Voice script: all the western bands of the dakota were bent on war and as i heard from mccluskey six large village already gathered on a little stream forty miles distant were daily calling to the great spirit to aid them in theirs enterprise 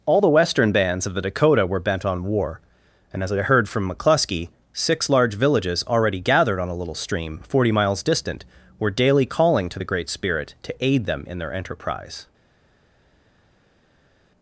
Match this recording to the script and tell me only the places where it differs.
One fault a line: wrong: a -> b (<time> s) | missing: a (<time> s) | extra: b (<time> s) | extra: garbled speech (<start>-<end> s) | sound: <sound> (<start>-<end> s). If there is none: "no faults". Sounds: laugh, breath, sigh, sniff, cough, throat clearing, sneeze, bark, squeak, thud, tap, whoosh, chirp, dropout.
wrong: village -> villages (5.3 s)
wrong: theirs -> their (11.4 s)